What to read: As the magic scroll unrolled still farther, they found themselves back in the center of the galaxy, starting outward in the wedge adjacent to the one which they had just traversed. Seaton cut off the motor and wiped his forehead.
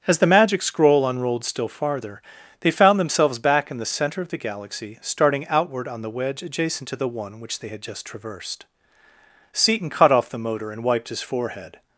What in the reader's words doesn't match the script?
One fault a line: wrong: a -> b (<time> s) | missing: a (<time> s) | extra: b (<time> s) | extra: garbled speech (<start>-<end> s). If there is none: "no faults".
wrong: in -> on (5.9 s)